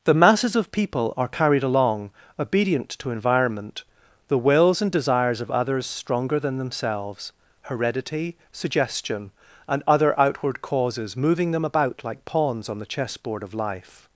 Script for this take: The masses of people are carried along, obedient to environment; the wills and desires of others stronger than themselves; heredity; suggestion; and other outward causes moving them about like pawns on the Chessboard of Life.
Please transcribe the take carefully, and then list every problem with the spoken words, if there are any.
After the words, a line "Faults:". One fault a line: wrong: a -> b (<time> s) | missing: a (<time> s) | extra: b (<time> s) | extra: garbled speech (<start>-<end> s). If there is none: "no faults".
The masses of people are carried along, obedient to environment; the wills and desires of others stronger than themselves; heredity; suggestion; and other outward causes moving them about like pawns on the Chessboard of Life.
Faults:
no faults